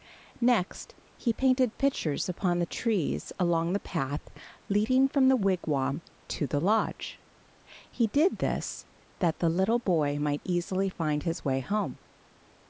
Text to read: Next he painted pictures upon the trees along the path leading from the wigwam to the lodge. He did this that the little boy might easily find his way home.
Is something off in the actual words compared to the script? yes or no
no